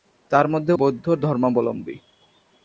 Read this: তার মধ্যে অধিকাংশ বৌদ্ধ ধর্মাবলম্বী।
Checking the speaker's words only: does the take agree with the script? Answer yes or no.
no